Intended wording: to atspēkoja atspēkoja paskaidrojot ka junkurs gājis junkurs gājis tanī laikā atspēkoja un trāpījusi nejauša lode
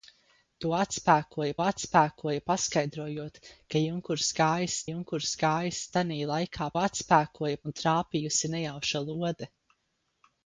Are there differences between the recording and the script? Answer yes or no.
no